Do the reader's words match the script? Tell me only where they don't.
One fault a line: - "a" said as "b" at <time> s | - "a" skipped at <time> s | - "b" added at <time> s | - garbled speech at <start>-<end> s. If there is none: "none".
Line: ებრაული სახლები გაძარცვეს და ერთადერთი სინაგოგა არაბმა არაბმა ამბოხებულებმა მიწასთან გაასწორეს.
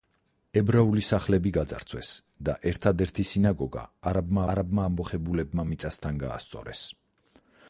none